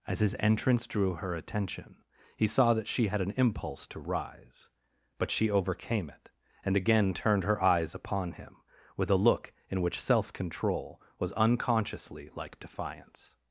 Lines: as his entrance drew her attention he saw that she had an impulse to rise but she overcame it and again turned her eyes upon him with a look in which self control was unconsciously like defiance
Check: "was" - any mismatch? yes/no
no